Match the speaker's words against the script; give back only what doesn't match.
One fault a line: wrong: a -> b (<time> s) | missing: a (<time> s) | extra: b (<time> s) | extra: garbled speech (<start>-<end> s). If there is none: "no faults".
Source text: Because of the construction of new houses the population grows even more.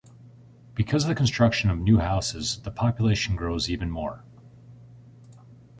no faults